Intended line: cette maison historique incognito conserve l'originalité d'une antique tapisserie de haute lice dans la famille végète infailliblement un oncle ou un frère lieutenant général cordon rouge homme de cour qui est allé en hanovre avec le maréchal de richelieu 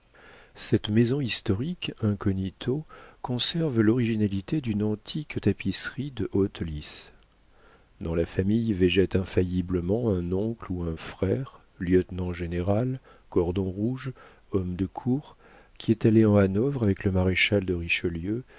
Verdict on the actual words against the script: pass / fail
pass